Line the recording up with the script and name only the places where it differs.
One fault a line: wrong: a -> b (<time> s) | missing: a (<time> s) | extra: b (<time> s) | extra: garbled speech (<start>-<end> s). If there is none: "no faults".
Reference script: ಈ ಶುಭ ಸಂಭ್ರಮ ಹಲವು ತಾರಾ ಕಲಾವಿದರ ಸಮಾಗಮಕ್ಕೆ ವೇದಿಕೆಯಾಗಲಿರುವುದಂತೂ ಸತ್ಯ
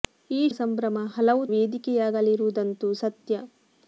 missing: ಶುಭ (0.5 s)
missing: ತಾರಾ ಕಲಾವಿದರ ಸಮಾಗಮಕ್ಕೆ (1.4 s)